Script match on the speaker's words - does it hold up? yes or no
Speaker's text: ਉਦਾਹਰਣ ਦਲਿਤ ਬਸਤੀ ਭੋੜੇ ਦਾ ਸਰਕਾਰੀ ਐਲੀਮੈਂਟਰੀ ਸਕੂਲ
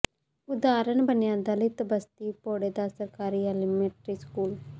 no